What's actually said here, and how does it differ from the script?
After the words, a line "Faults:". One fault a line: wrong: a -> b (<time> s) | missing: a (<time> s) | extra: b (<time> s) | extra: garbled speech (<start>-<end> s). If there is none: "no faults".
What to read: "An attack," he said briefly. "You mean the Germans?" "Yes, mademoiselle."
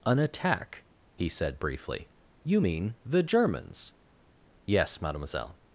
"An attack," he said briefly. "You mean the Germans?" "Yes, mademoiselle."
Faults:
no faults